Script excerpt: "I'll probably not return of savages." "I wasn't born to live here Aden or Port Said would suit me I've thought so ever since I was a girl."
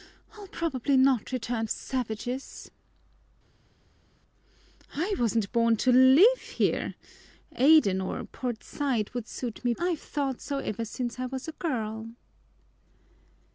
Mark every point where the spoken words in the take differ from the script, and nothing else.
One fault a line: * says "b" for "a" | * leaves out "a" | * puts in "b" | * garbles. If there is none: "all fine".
all fine